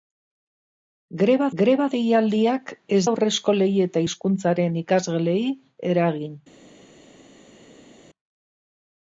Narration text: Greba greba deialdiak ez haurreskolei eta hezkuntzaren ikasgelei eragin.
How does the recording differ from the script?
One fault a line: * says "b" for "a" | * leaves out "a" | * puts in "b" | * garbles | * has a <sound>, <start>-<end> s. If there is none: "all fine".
all fine